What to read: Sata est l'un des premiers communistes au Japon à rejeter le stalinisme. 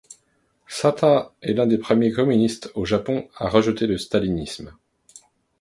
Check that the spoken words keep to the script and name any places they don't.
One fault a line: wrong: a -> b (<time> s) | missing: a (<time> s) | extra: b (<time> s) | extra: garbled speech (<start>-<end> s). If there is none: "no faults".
no faults